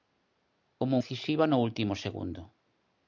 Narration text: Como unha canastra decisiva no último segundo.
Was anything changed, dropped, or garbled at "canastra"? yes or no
yes